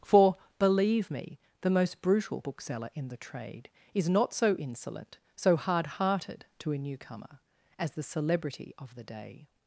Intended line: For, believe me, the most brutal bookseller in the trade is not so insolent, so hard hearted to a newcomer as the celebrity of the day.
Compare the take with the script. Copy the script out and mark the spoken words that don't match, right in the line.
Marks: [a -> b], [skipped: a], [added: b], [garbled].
For, believe me, the most brutal bookseller in the trade is not so insolent, so hard hearted to a newcomer as the celebrity of the day.